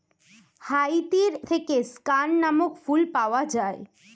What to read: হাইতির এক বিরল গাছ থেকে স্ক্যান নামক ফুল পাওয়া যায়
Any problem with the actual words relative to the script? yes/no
yes